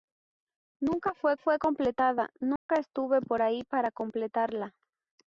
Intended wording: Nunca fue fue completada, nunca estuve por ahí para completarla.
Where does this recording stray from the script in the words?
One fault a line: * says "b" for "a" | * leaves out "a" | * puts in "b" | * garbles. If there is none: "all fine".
all fine